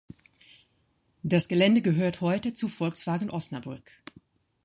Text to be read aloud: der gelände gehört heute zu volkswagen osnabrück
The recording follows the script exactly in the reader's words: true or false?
false